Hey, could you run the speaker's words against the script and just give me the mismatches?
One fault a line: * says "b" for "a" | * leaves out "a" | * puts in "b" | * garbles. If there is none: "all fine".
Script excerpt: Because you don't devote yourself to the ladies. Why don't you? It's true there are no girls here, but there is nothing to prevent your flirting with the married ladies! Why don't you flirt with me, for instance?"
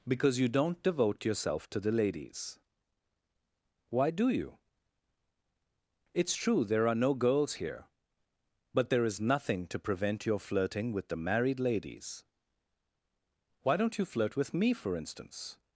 * says "do" for "don't"